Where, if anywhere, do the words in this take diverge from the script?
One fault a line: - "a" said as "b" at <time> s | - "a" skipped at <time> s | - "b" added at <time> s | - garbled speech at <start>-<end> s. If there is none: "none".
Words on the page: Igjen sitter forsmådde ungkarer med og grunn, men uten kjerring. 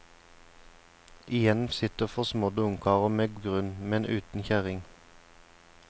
none